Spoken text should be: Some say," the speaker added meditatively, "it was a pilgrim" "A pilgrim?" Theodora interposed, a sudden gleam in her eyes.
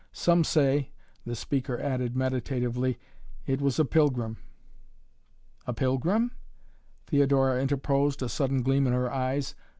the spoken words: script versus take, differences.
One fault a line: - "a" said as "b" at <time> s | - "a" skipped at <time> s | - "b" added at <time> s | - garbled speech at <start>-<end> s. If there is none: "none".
none